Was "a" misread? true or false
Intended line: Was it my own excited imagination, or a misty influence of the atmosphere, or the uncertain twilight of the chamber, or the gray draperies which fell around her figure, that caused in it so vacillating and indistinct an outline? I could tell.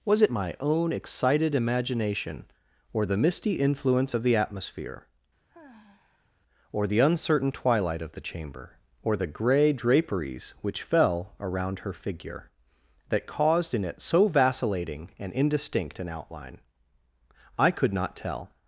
true